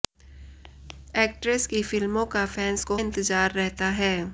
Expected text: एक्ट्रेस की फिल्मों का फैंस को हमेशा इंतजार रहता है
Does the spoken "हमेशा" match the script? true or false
false